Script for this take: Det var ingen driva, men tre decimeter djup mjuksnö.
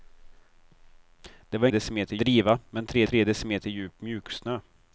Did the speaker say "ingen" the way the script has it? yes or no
no